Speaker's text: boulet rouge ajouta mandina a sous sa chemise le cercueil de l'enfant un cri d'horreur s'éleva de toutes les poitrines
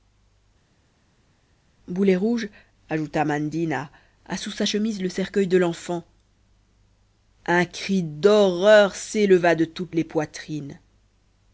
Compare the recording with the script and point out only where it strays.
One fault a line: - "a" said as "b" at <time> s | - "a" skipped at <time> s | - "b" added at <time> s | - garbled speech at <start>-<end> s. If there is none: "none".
none